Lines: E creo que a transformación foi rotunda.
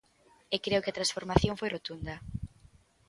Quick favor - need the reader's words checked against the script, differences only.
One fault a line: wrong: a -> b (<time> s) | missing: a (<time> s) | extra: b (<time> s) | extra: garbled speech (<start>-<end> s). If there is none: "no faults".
no faults